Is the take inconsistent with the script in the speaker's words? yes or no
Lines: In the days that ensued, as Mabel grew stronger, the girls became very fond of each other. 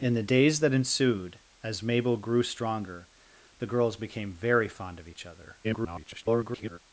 yes